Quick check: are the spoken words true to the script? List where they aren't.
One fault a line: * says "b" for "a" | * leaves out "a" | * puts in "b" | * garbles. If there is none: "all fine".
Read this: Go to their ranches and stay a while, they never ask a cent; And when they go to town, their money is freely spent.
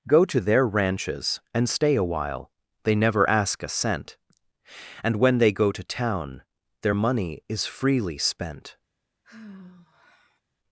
all fine